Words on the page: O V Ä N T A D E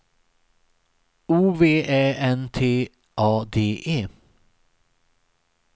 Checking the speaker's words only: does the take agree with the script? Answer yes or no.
yes